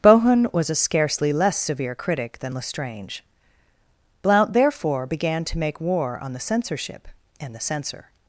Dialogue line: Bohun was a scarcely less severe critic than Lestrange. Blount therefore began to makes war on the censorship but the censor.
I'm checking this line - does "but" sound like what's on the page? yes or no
no